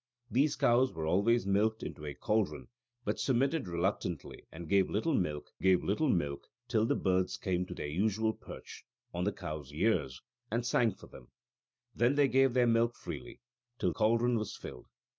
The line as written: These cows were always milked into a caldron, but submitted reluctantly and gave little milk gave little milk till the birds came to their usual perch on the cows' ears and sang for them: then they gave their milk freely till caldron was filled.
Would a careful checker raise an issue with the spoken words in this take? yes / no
no